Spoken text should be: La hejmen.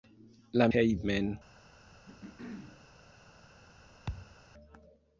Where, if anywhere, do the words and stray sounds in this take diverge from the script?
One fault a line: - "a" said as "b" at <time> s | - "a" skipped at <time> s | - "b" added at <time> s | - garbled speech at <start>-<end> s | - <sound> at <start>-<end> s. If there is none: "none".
- throat clearing at 2.1-2.9 s
- thud at 4.1-4.4 s